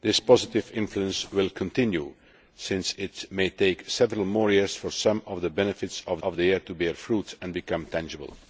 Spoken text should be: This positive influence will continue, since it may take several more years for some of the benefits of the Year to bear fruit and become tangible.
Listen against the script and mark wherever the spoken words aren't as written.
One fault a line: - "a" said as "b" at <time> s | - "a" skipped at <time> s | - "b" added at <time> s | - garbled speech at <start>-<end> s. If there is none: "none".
- "of" added at 6.2 s